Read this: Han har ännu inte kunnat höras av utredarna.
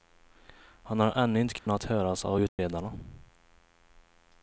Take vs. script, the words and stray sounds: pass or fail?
fail